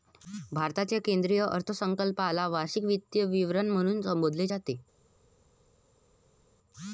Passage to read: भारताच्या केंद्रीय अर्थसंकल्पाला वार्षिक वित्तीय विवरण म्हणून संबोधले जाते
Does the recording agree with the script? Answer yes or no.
yes